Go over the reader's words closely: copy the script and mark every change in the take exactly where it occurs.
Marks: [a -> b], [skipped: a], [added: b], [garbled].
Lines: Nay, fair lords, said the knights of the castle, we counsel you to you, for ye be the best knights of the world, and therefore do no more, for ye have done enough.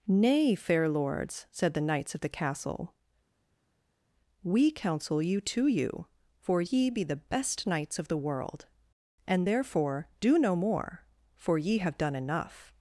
Nay, fair lords, said the knights of the castle, we counsel you to you, for ye be the best knights of the world, and therefore do no more, for ye have done enough.